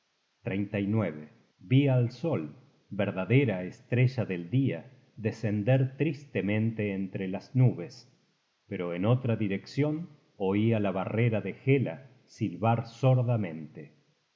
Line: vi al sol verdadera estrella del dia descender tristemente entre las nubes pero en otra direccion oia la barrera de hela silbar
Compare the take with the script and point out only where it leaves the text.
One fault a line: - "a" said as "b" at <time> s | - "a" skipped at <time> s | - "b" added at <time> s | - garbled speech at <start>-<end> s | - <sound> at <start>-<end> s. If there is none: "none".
none